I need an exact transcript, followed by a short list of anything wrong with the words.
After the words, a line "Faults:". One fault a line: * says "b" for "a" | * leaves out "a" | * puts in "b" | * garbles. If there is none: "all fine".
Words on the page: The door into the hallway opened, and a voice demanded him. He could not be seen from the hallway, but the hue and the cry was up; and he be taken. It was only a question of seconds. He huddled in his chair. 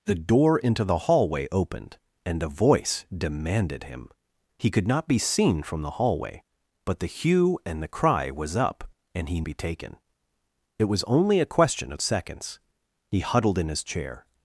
The door into the hallway opened, and a voice demanded him. He could not be seen from the hallway, but the hue and the cry was up; and he be taken. It was only a question of seconds. He huddled in his chair.
Faults:
all fine